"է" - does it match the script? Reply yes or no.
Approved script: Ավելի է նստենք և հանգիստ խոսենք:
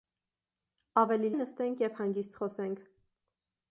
yes